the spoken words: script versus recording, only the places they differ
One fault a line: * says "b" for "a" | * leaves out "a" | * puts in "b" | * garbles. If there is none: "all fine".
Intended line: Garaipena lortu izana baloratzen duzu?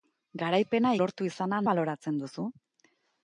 all fine